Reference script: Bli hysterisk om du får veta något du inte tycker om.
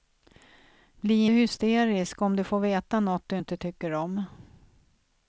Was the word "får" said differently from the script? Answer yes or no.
no